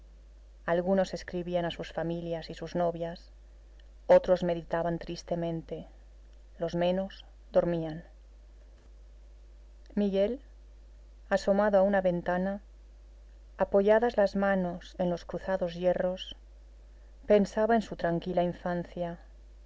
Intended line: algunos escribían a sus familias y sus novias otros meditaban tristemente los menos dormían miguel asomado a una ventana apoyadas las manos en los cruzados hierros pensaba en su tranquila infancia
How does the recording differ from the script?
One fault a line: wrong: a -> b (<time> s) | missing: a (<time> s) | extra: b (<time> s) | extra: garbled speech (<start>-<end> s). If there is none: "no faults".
no faults